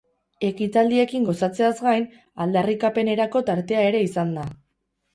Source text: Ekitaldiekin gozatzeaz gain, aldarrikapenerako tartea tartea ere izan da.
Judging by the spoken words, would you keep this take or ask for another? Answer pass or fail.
fail